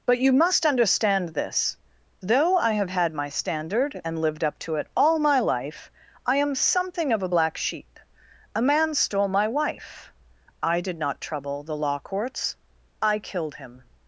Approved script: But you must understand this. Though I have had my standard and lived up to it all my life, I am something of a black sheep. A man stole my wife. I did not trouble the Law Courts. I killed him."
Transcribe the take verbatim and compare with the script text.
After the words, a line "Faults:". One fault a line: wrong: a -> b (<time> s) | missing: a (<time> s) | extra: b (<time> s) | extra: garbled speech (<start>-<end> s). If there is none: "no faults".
But you must understand this. Though I have had my standard and lived up to it all my life, I am something of a black sheep. A man stole my wife. I did not trouble the Law Courts. I killed him."
Faults:
no faults